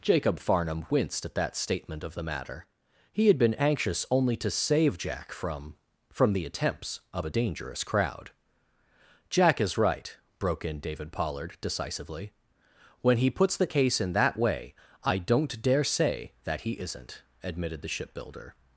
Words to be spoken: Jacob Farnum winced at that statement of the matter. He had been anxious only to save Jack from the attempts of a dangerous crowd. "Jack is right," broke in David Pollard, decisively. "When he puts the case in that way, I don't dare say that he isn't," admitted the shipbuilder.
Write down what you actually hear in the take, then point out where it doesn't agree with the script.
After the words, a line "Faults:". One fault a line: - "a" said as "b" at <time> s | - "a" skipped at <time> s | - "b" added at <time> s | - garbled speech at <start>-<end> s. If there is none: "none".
Jacob Farnum winced at that statement of the matter. He had been anxious only to save Jack from from the attempts of a dangerous crowd. "Jack is right," broke in David Pollard, decisively. "When he puts the case in that way, I don't dare say that he isn't," admitted the shipbuilder.
Faults:
- "from" added at 6.1 s